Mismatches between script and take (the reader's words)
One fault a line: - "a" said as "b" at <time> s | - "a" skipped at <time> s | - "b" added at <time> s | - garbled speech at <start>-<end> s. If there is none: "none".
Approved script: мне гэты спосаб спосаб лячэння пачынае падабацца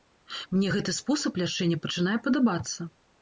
- "спосаб" skipped at 1.4 s